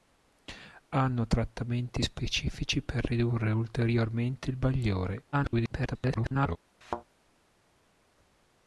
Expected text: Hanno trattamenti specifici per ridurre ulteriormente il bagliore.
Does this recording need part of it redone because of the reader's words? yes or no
yes